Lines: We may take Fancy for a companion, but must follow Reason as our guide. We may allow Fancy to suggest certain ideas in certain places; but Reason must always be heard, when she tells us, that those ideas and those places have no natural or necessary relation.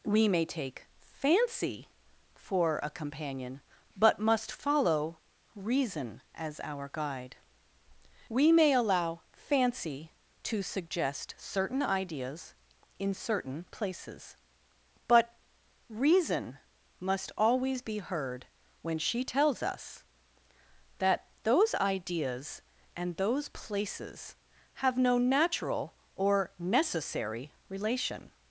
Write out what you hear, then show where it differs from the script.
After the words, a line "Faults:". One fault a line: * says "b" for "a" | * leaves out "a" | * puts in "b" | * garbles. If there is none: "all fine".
We may take Fancy for a companion, but must follow Reason as our guide. We may allow Fancy to suggest certain ideas in certain places; but Reason must always be heard, when she tells us, that those ideas and those places have no natural or necessary relation.
Faults:
all fine